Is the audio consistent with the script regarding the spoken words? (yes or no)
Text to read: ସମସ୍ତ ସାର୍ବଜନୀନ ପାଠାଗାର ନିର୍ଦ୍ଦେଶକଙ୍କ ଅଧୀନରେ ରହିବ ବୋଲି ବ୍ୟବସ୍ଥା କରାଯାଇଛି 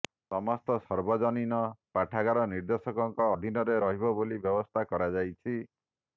yes